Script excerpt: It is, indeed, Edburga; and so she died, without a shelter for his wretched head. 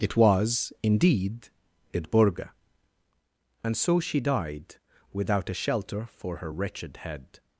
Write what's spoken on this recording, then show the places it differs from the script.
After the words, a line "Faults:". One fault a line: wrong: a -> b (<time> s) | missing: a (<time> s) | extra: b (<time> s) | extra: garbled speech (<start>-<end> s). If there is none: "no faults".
It was, indeed, Edburga; and so she died, without a shelter for her wretched head.
Faults:
wrong: is -> was (0.2 s)
wrong: his -> her (6.4 s)